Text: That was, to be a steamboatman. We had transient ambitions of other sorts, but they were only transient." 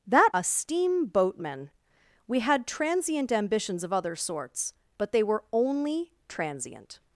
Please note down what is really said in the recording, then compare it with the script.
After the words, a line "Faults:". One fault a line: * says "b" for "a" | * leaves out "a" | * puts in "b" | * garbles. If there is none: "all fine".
That a steamboatman. We had transient ambitions of other sorts, but they were only transient."
Faults:
* leaves out "was to be"